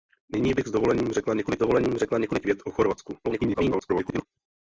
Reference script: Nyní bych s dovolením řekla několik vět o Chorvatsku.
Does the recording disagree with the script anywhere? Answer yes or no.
yes